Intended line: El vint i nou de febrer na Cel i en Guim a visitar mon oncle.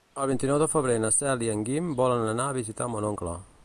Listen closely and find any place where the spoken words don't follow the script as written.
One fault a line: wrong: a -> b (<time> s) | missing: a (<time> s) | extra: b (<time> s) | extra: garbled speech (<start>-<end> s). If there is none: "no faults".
extra: volen anar (2.0 s)